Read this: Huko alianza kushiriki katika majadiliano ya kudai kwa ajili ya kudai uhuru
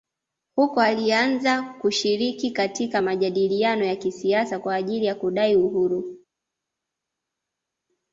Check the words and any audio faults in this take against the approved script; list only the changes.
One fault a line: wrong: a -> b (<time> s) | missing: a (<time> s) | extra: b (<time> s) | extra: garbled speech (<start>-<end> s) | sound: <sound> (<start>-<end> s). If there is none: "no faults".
wrong: kudai -> kisiasa (3.9 s)